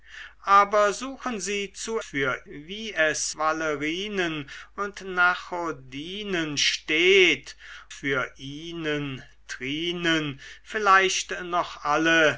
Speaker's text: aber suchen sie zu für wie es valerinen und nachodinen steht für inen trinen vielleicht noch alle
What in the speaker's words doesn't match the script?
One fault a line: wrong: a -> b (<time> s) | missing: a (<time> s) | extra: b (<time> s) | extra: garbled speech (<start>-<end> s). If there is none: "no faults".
no faults